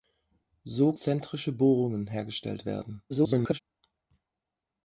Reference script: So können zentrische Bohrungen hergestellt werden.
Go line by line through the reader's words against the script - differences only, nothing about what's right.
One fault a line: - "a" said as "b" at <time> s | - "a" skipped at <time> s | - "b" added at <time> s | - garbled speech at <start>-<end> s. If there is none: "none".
- "können" skipped at 0.9 s
- garbled speech at 3.1-3.6 s